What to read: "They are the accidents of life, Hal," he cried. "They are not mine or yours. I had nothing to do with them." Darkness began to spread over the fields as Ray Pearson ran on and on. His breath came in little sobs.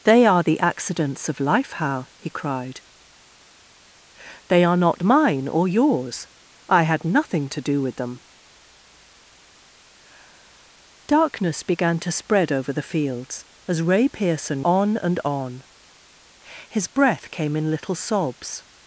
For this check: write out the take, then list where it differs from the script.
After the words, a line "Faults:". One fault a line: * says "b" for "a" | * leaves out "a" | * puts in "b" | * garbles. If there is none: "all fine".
"They are the accidents of life, Hal," he cried. "They are not mine or yours. I had nothing to do with them." Darkness began to spread over the fields as Ray Pearson on and on. His breath came in little sobs.
Faults:
* leaves out "ran"